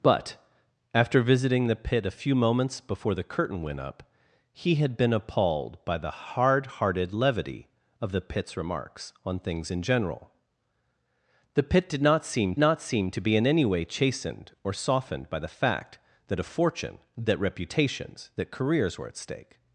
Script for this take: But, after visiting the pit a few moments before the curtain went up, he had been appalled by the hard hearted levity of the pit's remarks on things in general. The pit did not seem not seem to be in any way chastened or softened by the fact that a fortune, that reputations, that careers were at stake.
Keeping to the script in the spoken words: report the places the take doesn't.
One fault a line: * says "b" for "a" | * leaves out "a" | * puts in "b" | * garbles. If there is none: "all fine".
all fine